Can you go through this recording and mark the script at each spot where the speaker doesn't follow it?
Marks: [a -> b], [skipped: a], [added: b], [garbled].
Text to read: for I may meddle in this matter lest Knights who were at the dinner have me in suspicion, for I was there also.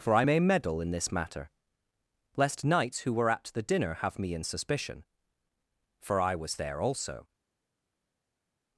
for I may meddle in this matter lest Knights who were at the dinner have me in suspicion, for I was there also.